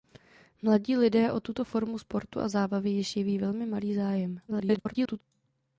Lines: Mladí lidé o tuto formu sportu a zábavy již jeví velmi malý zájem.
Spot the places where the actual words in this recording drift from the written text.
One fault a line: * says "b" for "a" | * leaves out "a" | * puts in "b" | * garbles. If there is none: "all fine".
* garbles